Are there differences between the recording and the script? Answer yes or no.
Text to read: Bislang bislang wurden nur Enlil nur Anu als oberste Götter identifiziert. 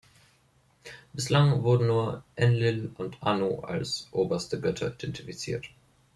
yes